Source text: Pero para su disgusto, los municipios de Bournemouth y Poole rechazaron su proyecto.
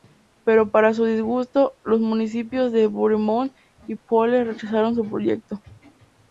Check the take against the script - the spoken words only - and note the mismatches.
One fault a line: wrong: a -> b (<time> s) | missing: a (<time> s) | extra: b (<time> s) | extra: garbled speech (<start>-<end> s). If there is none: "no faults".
no faults